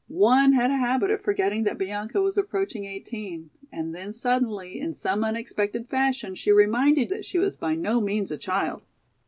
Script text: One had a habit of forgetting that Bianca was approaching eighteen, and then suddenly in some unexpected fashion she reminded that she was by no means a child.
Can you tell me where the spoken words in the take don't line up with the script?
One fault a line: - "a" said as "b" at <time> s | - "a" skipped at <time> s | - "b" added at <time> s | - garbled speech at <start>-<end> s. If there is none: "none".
none